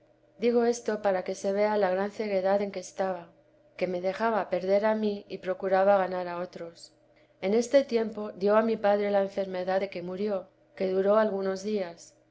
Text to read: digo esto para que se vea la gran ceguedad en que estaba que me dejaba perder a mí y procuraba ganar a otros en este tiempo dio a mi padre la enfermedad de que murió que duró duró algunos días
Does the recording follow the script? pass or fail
fail